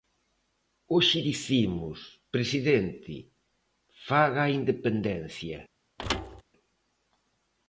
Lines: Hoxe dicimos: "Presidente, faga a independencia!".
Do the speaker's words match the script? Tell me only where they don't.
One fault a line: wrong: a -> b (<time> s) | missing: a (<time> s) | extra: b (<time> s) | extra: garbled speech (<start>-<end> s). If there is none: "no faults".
no faults